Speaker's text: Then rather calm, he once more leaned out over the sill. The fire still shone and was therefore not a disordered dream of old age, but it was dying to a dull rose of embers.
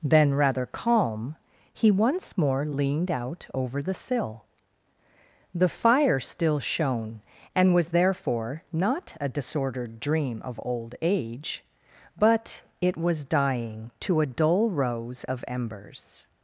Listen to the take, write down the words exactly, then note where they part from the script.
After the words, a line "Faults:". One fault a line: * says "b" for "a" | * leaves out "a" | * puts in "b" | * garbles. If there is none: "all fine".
Then rather calm, he once more leaned out over the sill. The fire still shone and was therefore not a disordered dream of old age, but it was dying to a dull rose of embers.
Faults:
all fine